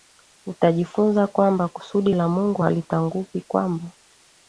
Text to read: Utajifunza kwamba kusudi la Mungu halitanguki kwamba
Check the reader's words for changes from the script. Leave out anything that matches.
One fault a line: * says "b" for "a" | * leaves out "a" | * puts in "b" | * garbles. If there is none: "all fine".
all fine